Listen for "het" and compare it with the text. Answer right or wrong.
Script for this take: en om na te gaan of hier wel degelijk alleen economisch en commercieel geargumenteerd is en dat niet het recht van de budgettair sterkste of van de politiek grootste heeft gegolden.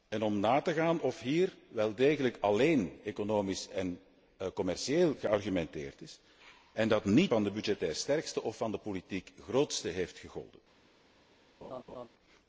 wrong